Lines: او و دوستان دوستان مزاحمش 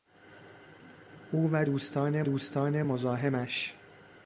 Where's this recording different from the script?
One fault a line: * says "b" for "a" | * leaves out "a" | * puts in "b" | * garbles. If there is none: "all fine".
all fine